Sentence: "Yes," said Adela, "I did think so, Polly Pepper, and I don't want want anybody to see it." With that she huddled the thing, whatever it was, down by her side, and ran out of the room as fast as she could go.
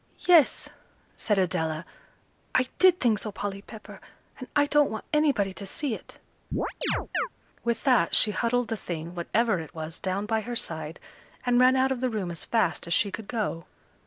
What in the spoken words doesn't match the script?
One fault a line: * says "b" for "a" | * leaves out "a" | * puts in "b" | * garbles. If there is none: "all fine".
* leaves out "want"